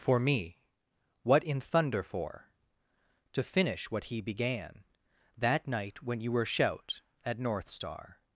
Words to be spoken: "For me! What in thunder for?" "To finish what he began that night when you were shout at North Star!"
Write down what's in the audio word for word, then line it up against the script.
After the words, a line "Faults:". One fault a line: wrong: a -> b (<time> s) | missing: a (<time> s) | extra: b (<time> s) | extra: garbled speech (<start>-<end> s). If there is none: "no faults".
"For me! What in thunder for?" "To finish what he began that night when you were shout at North Star!"
Faults:
no faults